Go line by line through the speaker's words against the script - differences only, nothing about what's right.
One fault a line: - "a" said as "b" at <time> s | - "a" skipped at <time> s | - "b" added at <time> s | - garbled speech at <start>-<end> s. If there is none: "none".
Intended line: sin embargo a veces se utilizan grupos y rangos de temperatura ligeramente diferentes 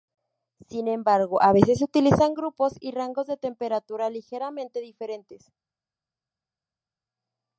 none